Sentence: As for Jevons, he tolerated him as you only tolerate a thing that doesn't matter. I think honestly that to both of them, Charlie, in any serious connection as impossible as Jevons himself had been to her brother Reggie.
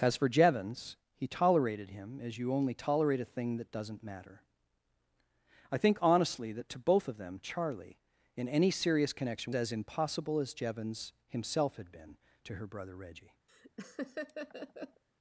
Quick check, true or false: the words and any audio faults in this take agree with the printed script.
false